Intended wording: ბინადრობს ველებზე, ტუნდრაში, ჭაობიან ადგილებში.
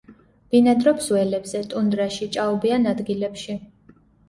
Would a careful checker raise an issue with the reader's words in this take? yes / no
no